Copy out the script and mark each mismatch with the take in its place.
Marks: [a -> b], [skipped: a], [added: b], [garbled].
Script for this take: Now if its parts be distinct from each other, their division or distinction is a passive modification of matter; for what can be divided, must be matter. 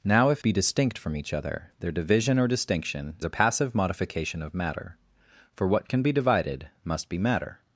Now if [skipped: its parts] be distinct from each other, their division or distinction [skipped: is] a passive modification of matter; for what can be divided, must be matter.